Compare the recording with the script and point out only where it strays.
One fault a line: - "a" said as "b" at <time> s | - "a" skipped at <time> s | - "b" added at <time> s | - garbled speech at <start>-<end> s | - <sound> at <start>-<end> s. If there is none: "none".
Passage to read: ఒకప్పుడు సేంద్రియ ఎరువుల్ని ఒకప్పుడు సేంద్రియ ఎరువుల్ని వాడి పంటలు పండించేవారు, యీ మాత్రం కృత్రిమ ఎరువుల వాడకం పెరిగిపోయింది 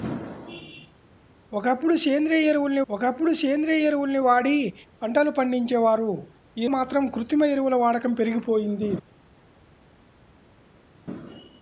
none